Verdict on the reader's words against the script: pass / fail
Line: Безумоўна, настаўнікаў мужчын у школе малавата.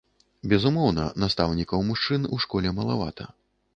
pass